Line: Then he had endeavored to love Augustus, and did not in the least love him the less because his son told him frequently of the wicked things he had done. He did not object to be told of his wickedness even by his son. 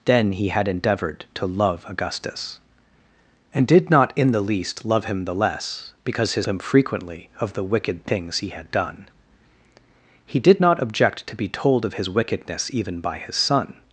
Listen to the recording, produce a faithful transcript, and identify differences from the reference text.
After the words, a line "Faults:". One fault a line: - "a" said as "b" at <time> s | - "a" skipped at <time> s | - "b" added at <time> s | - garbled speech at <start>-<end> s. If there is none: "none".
Then he had endeavored to love Augustus, and did not in the least love him the less because his him frequently of the wicked things he had done. He did not object to be told of his wickedness even by his son.
Faults:
- "son told" skipped at 6.5 s